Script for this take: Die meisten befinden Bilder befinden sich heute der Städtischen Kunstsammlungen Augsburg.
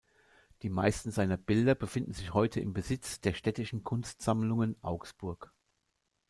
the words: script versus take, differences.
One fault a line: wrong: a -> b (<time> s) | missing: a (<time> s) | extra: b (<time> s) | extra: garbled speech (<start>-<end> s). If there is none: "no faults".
wrong: befinden -> seiner (1.1 s)
extra: im Besitz (2.6 s)